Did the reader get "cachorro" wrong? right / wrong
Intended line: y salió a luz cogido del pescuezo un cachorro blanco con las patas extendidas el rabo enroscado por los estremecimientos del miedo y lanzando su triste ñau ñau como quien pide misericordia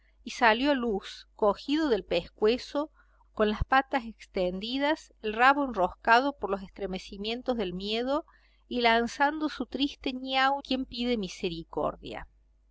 wrong